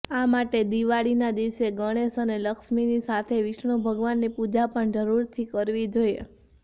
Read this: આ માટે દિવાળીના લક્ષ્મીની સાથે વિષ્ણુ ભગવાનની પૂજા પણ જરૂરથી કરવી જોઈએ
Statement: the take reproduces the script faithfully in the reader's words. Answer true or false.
false